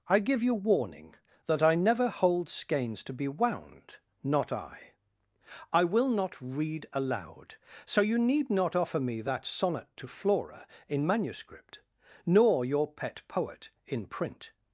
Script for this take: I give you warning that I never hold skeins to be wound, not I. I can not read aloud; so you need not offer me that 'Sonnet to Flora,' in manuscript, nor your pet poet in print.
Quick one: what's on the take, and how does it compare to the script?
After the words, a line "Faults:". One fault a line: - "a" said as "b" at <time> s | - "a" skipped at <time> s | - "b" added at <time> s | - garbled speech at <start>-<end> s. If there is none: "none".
I give you warning that I never hold skeins to be wound, not I. I will not read aloud; so you need not offer me that 'Sonnet to Flora,' in manuscript, nor your pet poet in print.
Faults:
- "can" said as "will" at 5.8 s